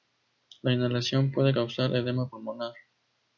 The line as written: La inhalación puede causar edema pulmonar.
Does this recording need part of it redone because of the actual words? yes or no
no